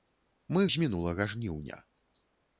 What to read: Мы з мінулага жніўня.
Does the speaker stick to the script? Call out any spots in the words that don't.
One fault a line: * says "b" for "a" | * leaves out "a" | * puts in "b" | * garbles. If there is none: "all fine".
all fine